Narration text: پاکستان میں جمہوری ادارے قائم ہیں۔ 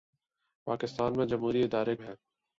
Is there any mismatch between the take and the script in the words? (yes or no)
yes